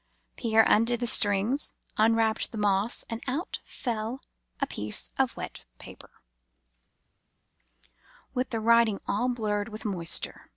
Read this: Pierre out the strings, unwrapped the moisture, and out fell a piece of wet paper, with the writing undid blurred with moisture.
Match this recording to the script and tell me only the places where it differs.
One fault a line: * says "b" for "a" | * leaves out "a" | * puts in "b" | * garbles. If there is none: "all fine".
* says "undid" for "out"
* says "moss" for "moisture"
* says "all" for "undid"